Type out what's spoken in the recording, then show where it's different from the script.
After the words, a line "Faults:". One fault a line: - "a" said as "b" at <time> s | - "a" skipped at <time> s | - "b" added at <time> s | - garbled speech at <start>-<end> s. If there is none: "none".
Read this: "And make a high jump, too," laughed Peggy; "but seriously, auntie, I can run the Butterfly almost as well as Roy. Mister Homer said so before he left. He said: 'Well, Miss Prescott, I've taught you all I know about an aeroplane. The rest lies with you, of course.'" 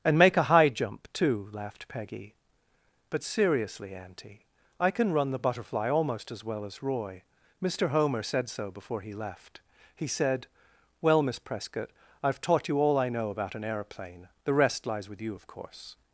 "And make a high jump, too," laughed Peggy; "but seriously, auntie, I can run the Butterfly almost as well as Roy. Mister Homer said so before he left. He said: 'Well, Miss Prescott, I've taught you all I know about an aeroplane. The rest lies with you, of course.'"
Faults:
none